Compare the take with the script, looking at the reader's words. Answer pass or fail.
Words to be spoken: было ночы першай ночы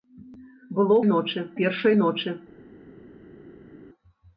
pass